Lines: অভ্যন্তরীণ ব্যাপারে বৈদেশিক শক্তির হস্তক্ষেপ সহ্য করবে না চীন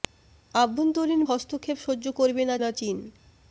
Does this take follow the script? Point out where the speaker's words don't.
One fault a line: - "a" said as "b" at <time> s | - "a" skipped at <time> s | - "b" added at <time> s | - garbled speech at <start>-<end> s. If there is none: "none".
- "ব্যাপারে বৈদেশিক শক্তির" skipped at 1.2 s
- "না" added at 2.6 s